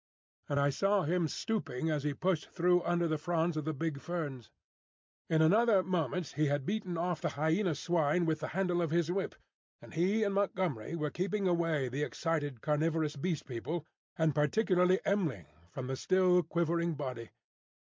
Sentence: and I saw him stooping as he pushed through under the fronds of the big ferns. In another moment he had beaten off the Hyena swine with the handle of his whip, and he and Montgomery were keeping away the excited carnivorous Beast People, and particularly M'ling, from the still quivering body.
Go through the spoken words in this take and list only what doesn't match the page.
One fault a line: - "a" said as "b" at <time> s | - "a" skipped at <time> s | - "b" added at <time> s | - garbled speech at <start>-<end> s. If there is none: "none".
none